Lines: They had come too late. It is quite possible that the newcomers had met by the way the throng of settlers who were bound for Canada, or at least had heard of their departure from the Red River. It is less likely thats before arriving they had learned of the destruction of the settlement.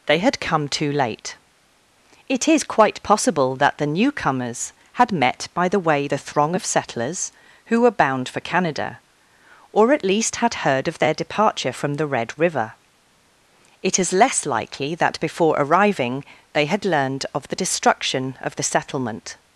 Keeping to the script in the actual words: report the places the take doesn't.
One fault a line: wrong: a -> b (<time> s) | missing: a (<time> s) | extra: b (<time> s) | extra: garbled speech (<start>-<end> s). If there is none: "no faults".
wrong: thats -> that (14.9 s)